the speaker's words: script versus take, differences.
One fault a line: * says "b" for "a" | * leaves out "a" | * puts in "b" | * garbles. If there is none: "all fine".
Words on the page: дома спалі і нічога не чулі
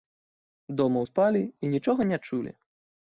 all fine